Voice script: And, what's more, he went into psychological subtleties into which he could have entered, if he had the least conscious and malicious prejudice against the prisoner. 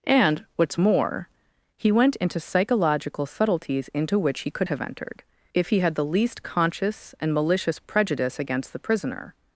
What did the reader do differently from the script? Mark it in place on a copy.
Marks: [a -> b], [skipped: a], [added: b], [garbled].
And, what's more, he went into psychological subtleties into which he could have entered, if he had the least conscious and malicious prejudice against the prisoner.